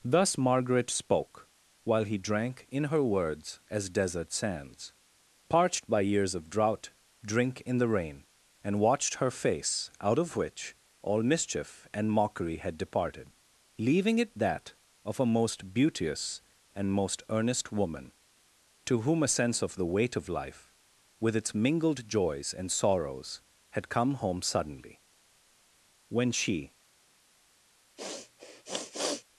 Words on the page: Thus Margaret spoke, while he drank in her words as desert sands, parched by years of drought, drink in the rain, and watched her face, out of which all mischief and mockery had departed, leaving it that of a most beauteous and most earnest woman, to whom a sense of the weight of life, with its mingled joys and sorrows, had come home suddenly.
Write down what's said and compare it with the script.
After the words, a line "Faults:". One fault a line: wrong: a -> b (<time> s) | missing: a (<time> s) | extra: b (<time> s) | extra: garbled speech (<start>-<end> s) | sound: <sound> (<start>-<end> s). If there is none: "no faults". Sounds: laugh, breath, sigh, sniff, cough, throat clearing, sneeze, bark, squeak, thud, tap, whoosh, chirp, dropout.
Thus Margaret spoke, while he drank in her words as desert sands, parched by years of drought, drink in the rain, and watched her face, out of which all mischief and mockery had departed, leaving it that of a most beauteous and most earnest woman, to whom a sense of the weight of life, with its mingled joys and sorrows, had come home suddenly. When she
Faults:
extra: When she (26.1 s)
sound: sniff (28.0-29.2 s)